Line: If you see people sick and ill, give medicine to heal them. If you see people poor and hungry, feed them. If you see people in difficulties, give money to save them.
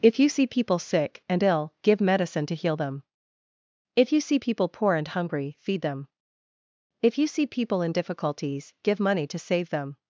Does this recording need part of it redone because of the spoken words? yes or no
no